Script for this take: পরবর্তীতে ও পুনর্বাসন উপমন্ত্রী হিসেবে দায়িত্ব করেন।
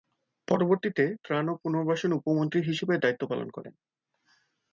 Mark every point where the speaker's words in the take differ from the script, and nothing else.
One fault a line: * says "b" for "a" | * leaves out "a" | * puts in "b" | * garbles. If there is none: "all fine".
* puts in "ত্রাণ"
* puts in "পালন"